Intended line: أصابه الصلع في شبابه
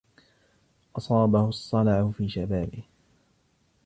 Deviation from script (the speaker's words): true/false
false